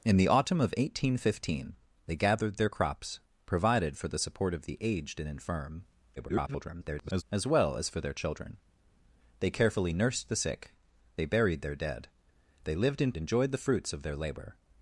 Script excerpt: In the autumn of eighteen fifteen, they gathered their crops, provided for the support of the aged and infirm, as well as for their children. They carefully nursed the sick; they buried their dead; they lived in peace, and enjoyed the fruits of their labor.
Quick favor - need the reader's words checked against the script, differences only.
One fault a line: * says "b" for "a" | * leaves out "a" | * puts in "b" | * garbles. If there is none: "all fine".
* garbles
* leaves out "peace and"